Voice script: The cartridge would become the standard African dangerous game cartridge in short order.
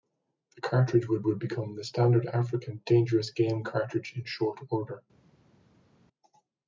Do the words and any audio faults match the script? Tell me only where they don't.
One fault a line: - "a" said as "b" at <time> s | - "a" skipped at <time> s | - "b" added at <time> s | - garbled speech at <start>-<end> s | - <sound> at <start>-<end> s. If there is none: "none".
- "would" added at 1.2 s